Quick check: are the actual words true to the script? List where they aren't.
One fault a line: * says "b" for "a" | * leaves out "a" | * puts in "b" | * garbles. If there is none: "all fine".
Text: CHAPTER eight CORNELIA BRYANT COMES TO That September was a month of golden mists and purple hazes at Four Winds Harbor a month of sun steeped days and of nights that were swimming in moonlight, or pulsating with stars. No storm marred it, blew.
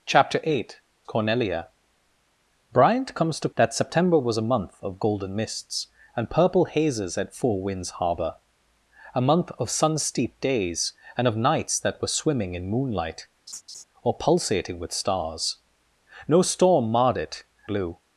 all fine